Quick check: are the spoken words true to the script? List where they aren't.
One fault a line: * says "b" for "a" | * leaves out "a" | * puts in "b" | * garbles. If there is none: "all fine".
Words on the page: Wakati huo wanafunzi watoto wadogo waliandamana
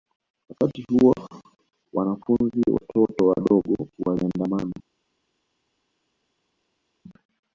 all fine